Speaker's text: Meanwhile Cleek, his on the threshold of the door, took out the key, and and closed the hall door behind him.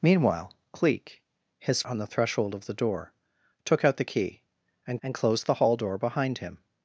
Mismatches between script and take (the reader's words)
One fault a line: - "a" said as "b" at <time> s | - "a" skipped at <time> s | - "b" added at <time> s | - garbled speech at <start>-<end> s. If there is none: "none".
none